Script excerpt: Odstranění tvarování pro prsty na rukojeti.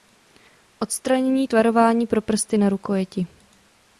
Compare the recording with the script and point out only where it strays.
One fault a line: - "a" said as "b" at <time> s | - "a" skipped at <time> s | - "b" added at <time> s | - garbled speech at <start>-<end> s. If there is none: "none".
none